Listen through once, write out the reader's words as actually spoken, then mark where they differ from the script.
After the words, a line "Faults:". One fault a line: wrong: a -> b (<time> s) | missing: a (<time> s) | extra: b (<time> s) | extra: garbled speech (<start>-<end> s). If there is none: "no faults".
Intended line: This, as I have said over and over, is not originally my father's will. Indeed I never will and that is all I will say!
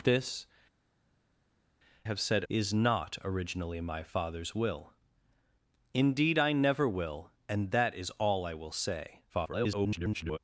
This, have said is not originally my father's will. Indeed I never will and that is all I will say! [garbled]
Faults:
missing: as I (0.5 s)
missing: over and over (2.4 s)
extra: garbled speech (9.3-10.4 s)